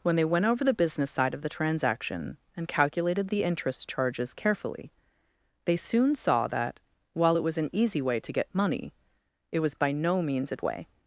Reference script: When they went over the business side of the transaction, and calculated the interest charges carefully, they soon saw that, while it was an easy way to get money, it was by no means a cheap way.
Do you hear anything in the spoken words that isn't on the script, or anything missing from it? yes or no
yes